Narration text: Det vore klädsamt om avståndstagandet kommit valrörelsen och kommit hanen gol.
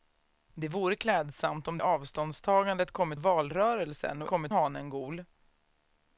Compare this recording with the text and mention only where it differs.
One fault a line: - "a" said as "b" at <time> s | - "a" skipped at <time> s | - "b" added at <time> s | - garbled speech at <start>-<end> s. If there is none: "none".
none